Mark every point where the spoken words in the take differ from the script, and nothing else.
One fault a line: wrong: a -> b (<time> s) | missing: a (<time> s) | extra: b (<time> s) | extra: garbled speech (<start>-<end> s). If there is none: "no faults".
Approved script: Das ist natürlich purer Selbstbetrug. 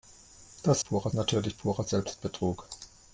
wrong: ist -> purer (0.8 s)